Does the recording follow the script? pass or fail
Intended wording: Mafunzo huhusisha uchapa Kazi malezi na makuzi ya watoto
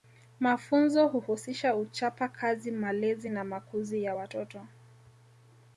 pass